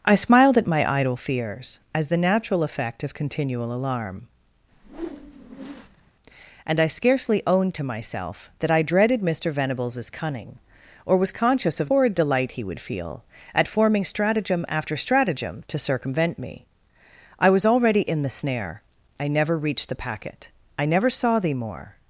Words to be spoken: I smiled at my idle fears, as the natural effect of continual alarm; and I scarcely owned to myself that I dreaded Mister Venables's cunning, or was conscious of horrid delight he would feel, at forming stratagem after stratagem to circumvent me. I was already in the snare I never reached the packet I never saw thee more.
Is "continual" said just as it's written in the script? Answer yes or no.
yes